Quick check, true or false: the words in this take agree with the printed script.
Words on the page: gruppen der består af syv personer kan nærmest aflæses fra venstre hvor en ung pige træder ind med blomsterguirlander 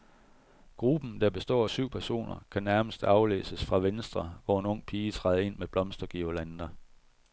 true